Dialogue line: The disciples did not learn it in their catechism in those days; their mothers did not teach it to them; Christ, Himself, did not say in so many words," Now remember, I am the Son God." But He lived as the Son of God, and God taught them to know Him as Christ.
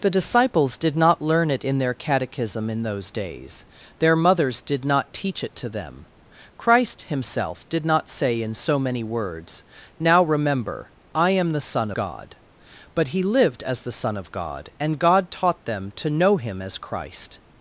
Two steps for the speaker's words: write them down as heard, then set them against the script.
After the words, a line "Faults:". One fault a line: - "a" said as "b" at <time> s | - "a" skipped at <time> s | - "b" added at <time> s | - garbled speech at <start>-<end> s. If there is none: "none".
The disciples did not learn it in their catechism in those days; their mothers did not teach it to them; Christ, Himself, did not say in so many words," Now remember, I am the Son God." But He lived as the Son of God, and God taught them to know Him as Christ.
Faults:
none